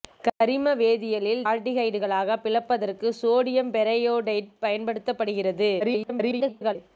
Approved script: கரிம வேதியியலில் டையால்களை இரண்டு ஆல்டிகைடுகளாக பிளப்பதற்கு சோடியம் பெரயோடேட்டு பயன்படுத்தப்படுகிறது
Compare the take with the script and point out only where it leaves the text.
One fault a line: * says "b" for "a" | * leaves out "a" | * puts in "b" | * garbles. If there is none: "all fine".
* leaves out "டையால்களை இரண்டு"
* garbles